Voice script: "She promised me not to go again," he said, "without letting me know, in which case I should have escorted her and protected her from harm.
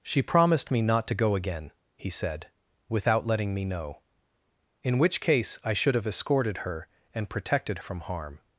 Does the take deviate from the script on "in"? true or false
false